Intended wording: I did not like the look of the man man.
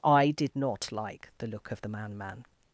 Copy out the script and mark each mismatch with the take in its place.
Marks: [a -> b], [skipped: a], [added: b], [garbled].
I did not like the look of the man man.